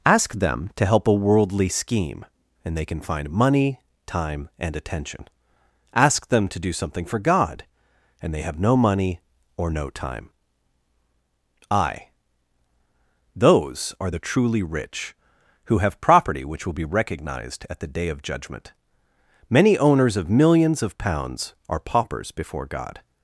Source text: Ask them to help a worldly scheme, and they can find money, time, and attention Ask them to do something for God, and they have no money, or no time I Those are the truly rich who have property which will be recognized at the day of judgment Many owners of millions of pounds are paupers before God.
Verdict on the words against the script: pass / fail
pass